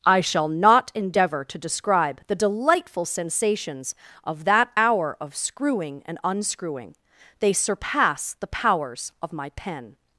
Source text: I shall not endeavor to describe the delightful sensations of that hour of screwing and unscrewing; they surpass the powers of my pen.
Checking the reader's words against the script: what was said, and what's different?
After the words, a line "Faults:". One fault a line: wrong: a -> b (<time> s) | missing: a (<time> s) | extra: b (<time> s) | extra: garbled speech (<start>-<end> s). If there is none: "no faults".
I shall not endeavor to describe the delightful sensations of that hour of screwing and unscrewing; they surpass the powers of my pen.
Faults:
no faults